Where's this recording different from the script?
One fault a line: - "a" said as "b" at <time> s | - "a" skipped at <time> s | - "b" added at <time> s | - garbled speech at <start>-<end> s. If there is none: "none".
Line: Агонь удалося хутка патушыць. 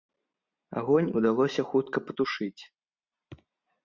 none